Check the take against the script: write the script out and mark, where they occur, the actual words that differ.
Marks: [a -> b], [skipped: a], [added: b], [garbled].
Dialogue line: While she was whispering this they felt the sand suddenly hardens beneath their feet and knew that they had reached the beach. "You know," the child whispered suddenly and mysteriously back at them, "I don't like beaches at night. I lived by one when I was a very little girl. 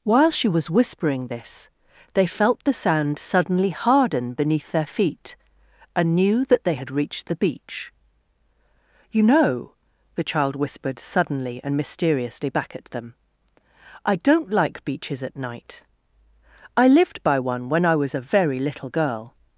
While she was whispering this they felt the sand suddenly [hardens -> harden] beneath their feet and knew that they had reached the beach. "You know," the child whispered suddenly and mysteriously back at them, "I don't like beaches at night. I lived by one when I was a very little girl.